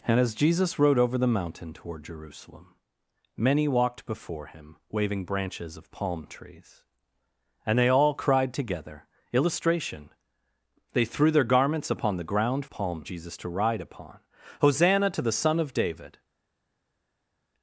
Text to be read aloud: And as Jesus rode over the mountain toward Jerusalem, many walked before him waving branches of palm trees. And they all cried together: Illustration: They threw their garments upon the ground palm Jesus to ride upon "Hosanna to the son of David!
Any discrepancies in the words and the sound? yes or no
no